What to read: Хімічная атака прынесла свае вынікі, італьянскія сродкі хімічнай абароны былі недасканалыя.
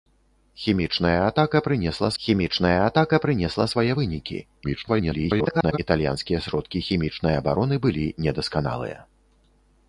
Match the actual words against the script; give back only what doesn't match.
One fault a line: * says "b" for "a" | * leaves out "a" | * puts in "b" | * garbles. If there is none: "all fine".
* puts in "хімічная атака прынесла"
* garbles